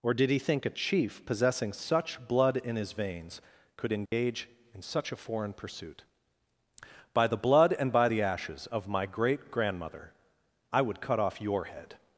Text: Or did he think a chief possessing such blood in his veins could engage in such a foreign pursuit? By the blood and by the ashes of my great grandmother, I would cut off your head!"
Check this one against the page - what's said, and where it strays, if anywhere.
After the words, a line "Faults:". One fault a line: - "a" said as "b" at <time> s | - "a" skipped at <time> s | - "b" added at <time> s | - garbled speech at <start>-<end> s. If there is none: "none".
Or did he think a chief possessing such blood in his veins could engage in such a foreign pursuit? By the blood and by the ashes of my great grandmother, I would cut off your head!"
Faults:
none